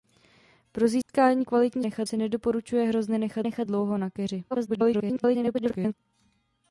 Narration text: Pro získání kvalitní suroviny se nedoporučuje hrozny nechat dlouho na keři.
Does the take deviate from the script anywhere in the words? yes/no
yes